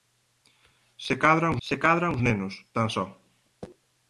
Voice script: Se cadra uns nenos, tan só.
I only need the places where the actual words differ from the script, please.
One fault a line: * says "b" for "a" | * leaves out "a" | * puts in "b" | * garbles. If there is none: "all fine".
* puts in "se cadra uns"